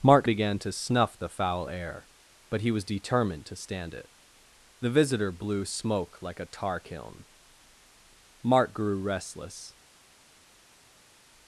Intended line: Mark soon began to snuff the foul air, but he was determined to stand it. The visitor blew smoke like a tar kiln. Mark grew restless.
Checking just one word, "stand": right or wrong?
right